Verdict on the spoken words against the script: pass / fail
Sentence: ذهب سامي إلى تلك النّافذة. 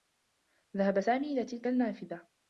pass